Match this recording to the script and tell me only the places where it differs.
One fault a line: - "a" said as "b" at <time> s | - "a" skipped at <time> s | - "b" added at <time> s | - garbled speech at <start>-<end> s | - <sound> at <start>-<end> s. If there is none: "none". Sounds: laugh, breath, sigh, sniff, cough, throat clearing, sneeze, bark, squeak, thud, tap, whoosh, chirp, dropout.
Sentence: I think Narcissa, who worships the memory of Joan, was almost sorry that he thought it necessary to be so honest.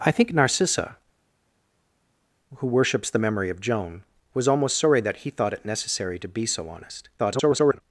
- garbled speech at 7.2-7.8 s